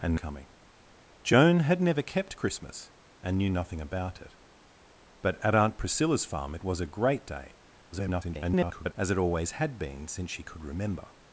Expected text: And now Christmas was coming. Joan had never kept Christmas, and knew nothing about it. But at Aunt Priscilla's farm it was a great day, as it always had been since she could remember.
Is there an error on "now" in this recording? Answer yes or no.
yes